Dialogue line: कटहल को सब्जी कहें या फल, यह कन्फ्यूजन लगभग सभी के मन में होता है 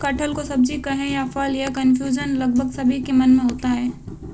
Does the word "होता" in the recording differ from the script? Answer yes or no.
no